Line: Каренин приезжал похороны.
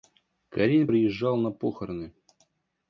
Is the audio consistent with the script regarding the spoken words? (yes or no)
no